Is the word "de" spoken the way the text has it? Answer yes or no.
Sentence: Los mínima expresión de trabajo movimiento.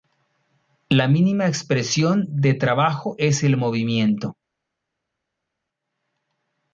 yes